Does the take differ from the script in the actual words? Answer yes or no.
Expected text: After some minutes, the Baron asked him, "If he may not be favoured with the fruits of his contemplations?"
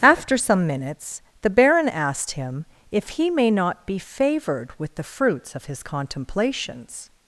no